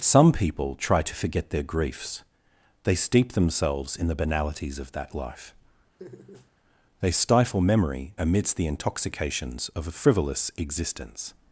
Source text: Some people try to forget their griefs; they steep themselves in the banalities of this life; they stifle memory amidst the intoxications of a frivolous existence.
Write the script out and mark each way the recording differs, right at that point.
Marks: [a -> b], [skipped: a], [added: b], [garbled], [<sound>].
Some people try to forget their griefs; they steep themselves in the banalities of [this -> that] life; [laugh] they stifle memory amidst the intoxications of a frivolous existence.